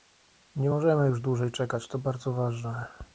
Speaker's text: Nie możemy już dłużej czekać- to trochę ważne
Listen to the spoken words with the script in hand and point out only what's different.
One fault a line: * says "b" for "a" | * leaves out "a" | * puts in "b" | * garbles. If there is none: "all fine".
* says "bardzo" for "trochę"